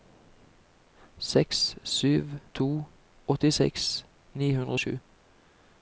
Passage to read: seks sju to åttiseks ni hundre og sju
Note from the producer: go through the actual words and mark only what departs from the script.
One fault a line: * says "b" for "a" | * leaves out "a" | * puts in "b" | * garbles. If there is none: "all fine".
all fine